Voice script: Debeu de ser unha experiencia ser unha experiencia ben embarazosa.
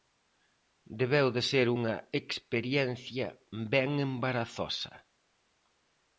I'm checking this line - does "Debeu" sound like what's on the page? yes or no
yes